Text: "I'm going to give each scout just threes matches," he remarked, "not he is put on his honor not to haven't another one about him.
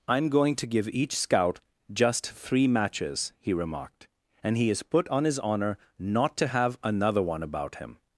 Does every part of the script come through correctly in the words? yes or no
no